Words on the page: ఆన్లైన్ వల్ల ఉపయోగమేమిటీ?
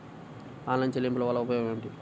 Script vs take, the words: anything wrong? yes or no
yes